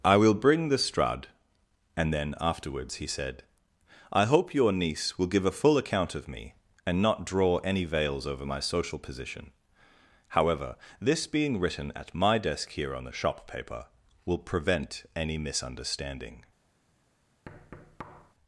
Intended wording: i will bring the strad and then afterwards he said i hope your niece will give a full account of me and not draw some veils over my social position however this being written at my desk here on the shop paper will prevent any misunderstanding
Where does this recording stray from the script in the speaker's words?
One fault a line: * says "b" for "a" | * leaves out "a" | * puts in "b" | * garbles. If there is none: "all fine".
* says "any" for "some"